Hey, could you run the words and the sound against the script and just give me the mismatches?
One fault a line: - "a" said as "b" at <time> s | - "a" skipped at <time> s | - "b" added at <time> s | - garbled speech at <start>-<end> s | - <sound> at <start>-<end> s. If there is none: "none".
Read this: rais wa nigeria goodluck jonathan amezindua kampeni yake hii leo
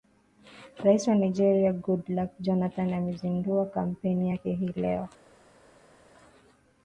none